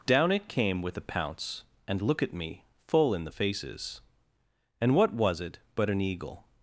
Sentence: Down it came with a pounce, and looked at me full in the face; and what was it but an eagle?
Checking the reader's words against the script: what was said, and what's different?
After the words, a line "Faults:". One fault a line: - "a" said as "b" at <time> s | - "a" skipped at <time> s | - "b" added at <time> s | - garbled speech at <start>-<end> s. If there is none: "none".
Down it came with a pounce, and look at me full in the faces; and what was it but an eagle?
Faults:
- "looked" said as "look" at 2.0 s
- "face" said as "faces" at 3.3 s